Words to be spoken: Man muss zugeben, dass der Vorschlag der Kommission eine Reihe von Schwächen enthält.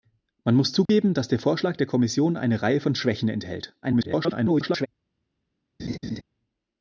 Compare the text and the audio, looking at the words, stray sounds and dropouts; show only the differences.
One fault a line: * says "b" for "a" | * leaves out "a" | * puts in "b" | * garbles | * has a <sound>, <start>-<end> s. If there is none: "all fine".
* has a dropout, 0.9-0.9 s
* garbles
* has a laugh, 5.8-6.2 s